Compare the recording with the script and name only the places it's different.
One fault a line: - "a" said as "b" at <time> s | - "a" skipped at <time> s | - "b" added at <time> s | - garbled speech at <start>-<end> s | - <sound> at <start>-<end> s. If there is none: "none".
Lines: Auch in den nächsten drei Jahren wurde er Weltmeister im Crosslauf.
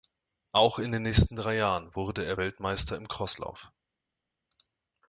none